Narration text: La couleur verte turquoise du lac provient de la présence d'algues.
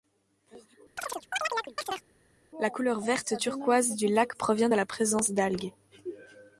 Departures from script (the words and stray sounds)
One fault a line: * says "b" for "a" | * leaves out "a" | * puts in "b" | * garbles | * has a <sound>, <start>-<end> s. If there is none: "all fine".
* has a chirp, 1.0-2.0 s